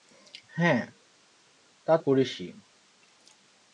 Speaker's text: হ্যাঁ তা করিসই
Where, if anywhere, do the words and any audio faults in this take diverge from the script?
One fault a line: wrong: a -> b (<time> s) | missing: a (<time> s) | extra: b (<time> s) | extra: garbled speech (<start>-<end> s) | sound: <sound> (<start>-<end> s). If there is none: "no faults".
no faults